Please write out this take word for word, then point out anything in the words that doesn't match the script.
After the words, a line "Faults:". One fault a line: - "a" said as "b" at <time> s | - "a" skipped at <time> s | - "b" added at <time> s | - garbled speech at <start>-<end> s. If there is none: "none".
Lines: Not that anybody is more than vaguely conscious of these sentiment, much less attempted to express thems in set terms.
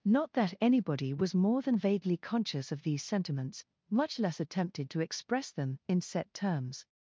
Not that anybody was more than vaguely conscious of these sentiments, much less attempted to express them in set terms.
Faults:
- "is" said as "was" at 1.1 s
- "sentiment" said as "sentiments" at 3.0 s
- "thems" said as "them" at 5.5 s